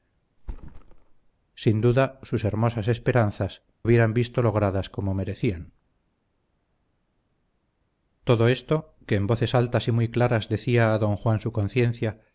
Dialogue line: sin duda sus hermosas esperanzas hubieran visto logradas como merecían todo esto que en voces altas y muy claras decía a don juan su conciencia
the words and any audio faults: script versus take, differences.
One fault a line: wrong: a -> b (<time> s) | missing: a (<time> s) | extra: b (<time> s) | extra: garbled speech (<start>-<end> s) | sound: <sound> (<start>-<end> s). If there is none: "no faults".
sound: thud (0.4-1.3 s)